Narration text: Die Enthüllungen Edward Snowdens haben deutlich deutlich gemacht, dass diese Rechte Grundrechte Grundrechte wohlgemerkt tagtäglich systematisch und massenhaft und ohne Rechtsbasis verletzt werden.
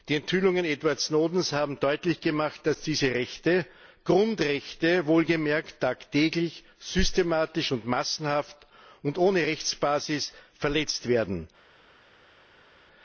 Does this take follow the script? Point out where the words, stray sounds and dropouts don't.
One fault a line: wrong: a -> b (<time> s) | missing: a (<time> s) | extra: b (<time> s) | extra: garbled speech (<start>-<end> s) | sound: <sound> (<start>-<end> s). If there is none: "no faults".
missing: deutlich (2.2 s)
missing: Grundrechte (5.1 s)